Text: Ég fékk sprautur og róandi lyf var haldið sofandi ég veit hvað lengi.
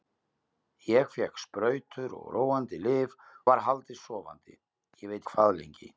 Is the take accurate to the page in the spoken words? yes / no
yes